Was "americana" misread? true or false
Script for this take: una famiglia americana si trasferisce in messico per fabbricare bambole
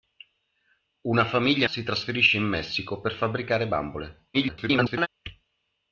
true